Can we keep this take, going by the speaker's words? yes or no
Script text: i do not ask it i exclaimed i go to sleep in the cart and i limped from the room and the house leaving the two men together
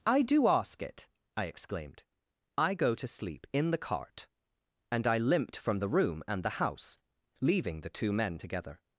no